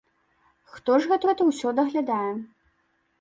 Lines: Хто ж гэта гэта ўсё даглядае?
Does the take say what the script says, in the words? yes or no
yes